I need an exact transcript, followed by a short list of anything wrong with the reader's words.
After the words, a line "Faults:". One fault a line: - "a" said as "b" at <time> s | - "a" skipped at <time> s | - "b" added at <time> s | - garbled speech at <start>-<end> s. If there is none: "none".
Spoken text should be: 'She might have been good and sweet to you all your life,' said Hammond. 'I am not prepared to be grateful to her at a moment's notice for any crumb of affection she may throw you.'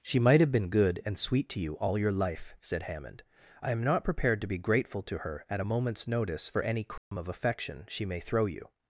'She might have been good and sweet to you all your life,' said Hammond. 'I am not prepared to be grateful to her at a moment's notice for any crumb of affection she may throw you.'
Faults:
none